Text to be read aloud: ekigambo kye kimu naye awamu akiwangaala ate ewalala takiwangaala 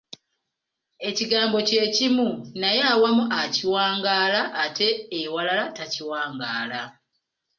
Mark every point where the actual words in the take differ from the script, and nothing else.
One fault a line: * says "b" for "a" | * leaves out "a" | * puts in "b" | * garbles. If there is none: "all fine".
all fine